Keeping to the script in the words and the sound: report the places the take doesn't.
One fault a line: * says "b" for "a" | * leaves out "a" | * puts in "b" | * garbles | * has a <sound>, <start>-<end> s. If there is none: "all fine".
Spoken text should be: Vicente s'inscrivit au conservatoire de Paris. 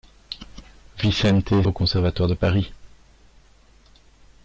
* leaves out "s'inscrivit"